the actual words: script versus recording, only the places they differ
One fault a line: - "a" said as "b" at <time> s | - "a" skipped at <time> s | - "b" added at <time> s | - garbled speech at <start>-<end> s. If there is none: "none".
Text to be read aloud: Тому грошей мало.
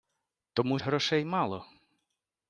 none